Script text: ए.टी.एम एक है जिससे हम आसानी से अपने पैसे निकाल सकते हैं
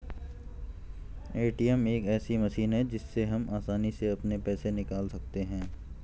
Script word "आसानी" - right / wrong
right